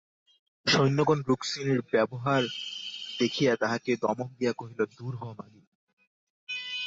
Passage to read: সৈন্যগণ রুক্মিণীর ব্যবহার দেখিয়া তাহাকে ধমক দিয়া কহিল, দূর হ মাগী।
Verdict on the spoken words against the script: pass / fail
pass